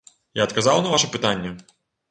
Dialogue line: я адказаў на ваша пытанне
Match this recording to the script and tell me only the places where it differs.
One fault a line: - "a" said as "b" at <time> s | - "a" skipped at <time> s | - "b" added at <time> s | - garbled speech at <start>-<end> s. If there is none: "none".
none